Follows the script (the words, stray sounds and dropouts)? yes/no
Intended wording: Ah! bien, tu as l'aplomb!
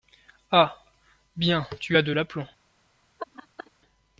no